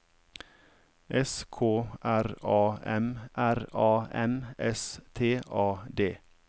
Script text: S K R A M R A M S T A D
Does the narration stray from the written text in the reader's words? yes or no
no